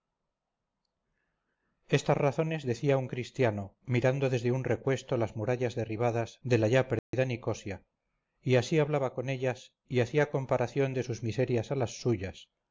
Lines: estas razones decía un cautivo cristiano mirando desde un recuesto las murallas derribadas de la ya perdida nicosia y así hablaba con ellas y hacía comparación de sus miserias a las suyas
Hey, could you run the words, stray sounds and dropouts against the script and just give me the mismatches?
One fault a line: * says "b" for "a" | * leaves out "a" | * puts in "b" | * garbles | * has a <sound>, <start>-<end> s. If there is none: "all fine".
* leaves out "cautivo"
* has a dropout, 7.0-7.1 s